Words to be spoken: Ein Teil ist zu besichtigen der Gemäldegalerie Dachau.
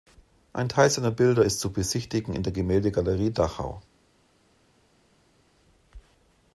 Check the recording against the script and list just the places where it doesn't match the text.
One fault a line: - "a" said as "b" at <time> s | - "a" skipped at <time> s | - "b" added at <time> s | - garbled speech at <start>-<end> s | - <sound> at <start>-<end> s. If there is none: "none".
- "seiner Bilder" added at 0.9 s
- "in" added at 2.3 s